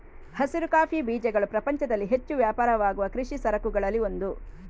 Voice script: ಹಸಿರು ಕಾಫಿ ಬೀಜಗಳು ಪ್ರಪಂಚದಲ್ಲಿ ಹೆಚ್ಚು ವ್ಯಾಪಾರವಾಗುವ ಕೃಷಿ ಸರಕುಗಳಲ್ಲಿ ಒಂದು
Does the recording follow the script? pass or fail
pass